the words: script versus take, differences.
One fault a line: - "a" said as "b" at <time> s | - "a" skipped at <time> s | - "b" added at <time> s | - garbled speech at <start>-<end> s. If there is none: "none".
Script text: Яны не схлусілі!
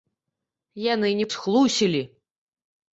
none